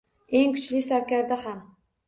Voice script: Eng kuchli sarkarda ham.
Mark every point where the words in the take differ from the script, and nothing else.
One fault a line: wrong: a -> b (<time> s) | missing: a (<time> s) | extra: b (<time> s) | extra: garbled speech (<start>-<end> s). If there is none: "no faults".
no faults